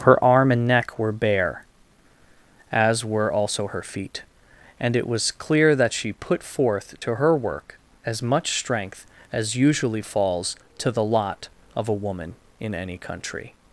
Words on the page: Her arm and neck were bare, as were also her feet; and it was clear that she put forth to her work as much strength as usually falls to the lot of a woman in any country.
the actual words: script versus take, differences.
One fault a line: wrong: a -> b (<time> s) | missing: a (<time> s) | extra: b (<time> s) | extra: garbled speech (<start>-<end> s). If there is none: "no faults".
no faults